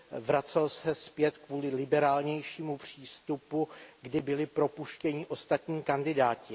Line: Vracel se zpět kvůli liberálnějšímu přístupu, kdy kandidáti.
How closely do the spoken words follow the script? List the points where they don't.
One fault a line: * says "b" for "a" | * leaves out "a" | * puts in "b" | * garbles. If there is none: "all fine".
* puts in "byli propuštěni ostatní"